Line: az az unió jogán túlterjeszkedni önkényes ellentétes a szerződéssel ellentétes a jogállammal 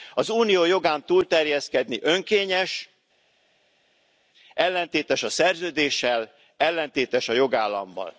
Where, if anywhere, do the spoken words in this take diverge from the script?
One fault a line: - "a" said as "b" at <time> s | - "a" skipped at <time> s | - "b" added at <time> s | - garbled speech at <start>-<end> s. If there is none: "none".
- "az" skipped at 0.3 s